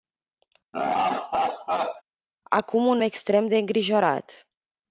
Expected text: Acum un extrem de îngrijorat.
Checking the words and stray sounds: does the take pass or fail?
fail